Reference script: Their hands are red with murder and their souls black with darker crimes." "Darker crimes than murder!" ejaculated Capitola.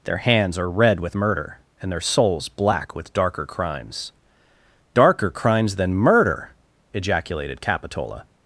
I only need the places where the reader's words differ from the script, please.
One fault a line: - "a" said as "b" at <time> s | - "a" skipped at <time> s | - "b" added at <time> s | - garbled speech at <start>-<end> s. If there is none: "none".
none